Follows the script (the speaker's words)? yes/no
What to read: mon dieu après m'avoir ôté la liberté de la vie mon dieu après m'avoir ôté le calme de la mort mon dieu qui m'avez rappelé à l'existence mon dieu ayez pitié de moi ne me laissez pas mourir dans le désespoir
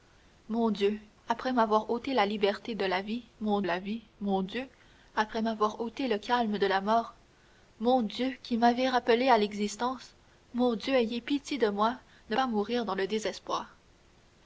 no